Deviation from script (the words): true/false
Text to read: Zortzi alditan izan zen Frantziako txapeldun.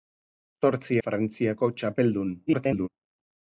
true